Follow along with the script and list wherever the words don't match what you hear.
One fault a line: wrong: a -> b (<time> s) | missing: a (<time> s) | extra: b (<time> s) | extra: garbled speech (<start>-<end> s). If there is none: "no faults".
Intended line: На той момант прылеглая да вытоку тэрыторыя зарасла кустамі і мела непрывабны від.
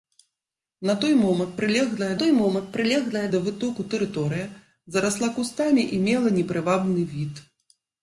extra: той момант прылеглая (2.2 s)